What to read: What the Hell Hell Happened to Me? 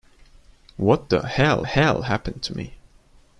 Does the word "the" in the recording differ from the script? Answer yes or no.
no